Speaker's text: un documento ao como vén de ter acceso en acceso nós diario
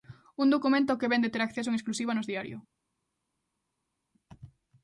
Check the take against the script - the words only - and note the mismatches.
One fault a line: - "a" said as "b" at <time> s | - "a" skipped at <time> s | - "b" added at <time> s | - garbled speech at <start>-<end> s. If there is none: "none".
- "como" said as "que" at 1.0 s
- "acceso" said as "exclusiva" at 1.8 s